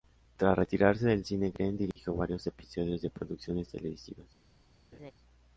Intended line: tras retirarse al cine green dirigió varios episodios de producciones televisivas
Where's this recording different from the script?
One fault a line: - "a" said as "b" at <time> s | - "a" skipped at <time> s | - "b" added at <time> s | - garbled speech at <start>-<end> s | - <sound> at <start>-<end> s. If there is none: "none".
- "al" said as "del" at 1.1 s
- dropout at 1.9-2.0 s
- laugh at 4.9-5.1 s